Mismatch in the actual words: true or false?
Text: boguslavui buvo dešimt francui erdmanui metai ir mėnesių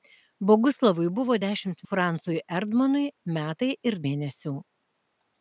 false